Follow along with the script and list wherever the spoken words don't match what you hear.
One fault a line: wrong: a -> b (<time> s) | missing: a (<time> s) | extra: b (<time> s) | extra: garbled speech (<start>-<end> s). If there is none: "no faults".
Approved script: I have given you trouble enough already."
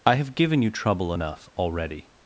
no faults